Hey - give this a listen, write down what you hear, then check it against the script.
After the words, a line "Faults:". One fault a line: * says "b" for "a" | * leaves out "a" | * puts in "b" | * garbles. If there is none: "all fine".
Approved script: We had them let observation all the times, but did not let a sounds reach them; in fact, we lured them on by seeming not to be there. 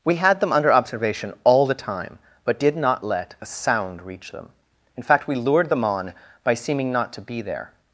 We had them under observation all the time, but did not let a sound reach them; in fact, we lured them on by seeming not to be there.
Faults:
* says "under" for "let"
* says "time" for "times"
* says "sound" for "sounds"